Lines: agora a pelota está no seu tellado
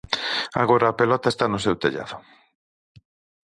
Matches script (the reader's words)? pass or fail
pass